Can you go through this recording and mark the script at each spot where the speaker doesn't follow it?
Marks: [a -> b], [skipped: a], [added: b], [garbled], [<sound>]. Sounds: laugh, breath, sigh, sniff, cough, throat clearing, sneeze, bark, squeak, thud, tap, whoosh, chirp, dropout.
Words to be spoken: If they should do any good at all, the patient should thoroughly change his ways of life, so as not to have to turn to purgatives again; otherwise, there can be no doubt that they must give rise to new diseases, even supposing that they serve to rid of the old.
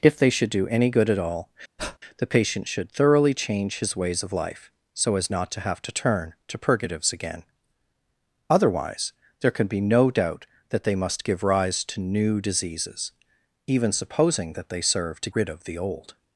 If they should do any good at all, [breath] the patient should thoroughly change his ways of life, so as not to have to turn to purgatives again; otherwise, there can be no doubt that they must give rise to new diseases, even supposing that they serve to rid of the old.